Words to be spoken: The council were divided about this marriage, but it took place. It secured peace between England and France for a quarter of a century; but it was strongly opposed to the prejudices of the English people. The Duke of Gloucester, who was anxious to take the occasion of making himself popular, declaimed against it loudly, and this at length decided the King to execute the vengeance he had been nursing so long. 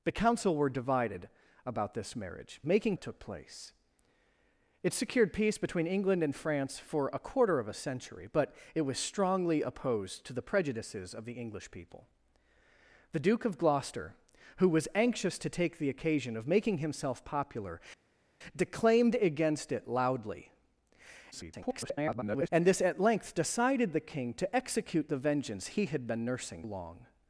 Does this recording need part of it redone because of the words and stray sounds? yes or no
yes